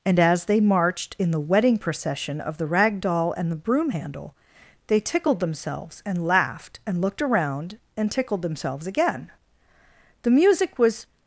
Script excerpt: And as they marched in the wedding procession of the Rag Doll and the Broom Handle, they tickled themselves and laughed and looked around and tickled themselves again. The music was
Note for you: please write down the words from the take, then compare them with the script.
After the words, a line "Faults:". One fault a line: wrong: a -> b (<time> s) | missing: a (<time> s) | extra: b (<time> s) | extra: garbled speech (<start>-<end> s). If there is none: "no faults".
And as they marched in the wedding procession of the Rag Doll and the Broom Handle, they tickled themselves and laughed and looked around and tickled themselves again. The music was
Faults:
no faults